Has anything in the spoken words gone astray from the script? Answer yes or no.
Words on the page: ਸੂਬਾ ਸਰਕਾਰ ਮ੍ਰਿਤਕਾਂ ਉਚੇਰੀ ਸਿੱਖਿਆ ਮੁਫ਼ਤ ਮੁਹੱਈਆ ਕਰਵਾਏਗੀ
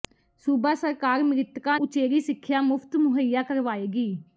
no